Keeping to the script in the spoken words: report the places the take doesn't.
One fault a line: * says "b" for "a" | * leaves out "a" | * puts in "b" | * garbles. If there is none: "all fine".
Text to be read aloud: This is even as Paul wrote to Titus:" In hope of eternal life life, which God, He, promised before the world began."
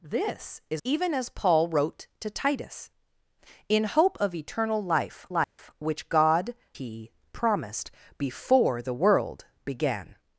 all fine